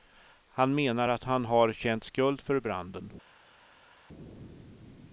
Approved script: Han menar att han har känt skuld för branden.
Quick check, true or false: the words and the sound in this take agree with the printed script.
true